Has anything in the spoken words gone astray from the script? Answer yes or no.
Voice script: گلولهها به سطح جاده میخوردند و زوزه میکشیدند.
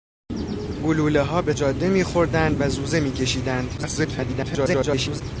yes